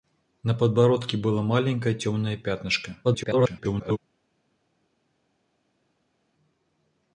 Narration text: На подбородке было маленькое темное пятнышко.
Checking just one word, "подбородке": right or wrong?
right